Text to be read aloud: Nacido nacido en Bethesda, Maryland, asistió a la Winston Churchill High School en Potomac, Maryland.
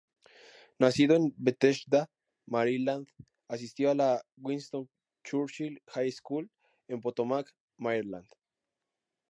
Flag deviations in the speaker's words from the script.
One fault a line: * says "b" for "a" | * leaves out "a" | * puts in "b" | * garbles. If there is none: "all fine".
* leaves out "nacido"